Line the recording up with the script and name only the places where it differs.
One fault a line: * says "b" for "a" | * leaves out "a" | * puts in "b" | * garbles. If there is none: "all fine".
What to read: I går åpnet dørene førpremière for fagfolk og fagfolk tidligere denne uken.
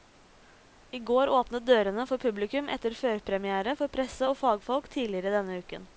* puts in "for publikum etter"
* says "presse" for "fagfolk"